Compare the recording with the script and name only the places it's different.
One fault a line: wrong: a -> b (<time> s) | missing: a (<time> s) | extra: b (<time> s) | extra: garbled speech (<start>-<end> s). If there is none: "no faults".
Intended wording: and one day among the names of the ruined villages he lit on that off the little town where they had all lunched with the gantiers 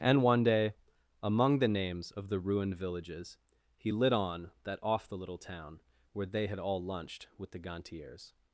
no faults